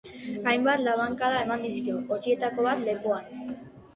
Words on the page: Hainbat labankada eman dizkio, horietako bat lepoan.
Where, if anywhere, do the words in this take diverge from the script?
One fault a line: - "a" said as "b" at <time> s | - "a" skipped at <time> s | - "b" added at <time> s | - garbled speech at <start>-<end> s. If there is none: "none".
none